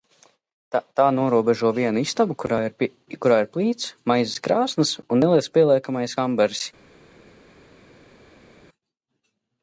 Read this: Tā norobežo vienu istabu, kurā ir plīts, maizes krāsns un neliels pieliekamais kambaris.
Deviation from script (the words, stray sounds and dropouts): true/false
false